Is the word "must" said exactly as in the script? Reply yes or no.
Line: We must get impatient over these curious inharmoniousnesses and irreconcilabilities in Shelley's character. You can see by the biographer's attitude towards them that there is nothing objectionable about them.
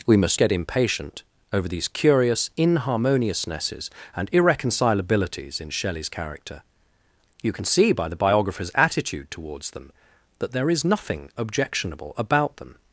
yes